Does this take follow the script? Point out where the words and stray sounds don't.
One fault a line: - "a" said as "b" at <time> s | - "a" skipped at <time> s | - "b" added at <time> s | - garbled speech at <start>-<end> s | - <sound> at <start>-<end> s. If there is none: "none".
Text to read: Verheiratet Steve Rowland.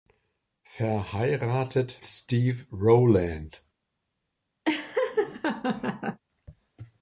- laugh at 4.7-6.2 s